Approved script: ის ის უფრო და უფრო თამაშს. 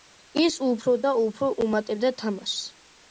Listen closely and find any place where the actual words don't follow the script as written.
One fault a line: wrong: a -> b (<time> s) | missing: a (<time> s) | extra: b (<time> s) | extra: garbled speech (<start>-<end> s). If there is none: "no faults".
missing: ის (0.6 s)
extra: უმატებდა (1.6 s)